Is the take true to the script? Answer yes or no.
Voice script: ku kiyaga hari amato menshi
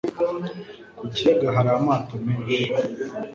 yes